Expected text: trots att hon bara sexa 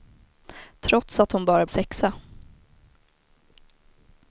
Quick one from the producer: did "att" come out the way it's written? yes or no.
yes